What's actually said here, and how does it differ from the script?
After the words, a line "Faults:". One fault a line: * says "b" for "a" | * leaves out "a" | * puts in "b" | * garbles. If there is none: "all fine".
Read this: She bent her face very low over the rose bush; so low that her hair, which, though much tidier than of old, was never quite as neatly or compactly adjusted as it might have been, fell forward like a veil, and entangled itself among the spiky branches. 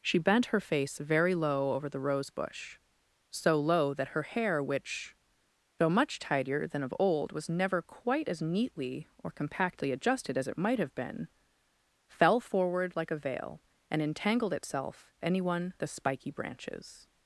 She bent her face very low over the rose bush; so low that her hair, which, though much tidier than of old, was never quite as neatly or compactly adjusted as it might have been, fell forward like a veil, and entangled itself anyone the spiky branches.
Faults:
* says "anyone" for "among"